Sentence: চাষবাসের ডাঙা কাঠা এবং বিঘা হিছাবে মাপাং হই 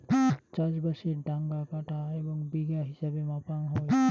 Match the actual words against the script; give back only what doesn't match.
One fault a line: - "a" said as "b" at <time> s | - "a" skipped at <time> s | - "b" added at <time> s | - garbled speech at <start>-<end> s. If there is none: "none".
none